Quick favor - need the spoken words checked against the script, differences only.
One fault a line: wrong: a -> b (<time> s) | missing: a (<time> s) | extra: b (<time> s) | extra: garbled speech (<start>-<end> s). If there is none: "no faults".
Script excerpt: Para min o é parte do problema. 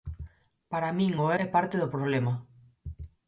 no faults